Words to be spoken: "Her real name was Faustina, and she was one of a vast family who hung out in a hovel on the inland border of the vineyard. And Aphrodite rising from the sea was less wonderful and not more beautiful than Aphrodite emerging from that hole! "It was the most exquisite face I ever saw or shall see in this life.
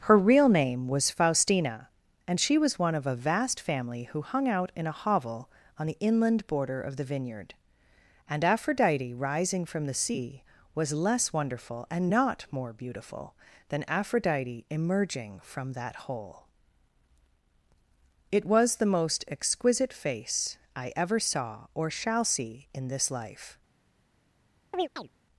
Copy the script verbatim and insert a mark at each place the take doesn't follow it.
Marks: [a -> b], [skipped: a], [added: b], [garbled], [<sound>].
"Her real name was Faustina, and she was one of a vast family who hung out in a hovel on the inland border of the vineyard. And Aphrodite rising from the sea was less wonderful and not more beautiful than Aphrodite emerging from that hole! "It was the most exquisite face I ever saw or shall see in this life. [chirp]